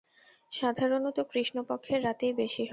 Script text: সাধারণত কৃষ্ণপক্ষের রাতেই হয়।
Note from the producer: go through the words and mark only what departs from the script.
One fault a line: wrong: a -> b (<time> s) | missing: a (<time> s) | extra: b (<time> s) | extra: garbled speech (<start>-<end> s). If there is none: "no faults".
extra: বেশি (2.3 s)